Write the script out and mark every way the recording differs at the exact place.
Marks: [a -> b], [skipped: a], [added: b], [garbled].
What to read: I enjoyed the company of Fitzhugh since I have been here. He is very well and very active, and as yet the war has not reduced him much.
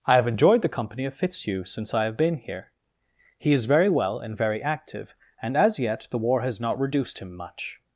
I [added: have] enjoyed the company of Fitzhugh since I have been here. He is very well and very active, and as yet the war has not reduced him much.